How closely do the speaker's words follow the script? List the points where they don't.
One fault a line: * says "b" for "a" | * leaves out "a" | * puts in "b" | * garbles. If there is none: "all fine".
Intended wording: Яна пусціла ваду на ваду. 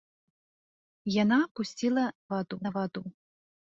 all fine